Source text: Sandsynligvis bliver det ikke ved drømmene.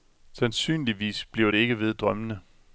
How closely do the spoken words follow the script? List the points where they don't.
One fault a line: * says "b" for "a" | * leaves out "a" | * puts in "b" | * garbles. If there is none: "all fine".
all fine